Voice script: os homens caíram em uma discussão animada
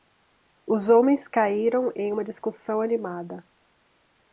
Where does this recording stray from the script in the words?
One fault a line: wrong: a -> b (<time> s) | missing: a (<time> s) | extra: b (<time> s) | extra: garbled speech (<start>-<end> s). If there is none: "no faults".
no faults